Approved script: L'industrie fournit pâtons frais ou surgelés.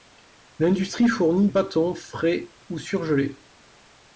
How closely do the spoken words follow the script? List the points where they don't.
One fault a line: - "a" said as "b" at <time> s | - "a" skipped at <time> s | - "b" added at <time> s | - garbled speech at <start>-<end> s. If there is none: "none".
none